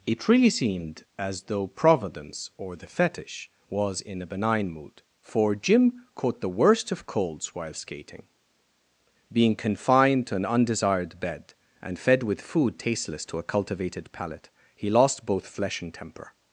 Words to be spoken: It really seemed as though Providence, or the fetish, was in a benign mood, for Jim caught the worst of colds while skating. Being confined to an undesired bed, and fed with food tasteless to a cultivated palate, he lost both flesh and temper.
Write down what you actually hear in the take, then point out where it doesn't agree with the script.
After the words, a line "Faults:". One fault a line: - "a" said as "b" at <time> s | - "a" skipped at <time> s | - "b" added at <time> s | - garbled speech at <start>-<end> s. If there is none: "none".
It really seemed as though Providence, or the fetish, was in a benign mood, for Jim caught the worst of colds while skating. Being confined to an undesired bed, and fed with food tasteless to a cultivated palate, he lost both flesh and temper.
Faults:
none